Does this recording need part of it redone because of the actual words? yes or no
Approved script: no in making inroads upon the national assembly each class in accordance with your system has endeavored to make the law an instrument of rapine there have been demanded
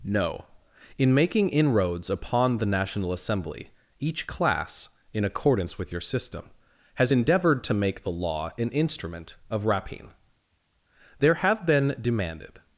no